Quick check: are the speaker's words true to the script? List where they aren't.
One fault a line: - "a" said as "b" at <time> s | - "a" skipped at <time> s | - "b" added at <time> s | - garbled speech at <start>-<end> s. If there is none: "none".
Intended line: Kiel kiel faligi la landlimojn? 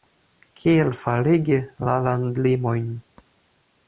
- "kiel" skipped at 0.9 s